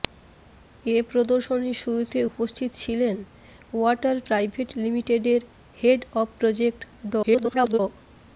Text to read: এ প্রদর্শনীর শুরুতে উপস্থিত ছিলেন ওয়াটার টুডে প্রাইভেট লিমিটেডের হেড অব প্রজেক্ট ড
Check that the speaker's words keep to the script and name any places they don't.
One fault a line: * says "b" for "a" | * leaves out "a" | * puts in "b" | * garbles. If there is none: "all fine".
* leaves out "টুডে"
* garbles